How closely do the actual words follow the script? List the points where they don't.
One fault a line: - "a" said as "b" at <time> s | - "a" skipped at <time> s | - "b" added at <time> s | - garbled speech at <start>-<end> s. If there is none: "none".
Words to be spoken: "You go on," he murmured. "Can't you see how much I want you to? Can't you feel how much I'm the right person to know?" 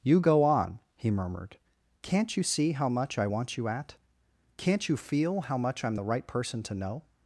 - "to" said as "at" at 3.7 s